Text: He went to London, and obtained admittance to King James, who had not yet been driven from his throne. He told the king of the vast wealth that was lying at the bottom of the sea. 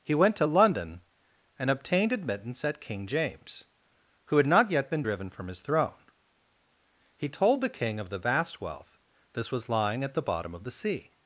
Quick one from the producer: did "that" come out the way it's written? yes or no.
no